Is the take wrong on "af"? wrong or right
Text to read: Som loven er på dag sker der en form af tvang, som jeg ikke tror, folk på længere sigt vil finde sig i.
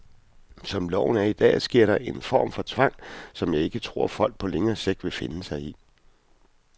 wrong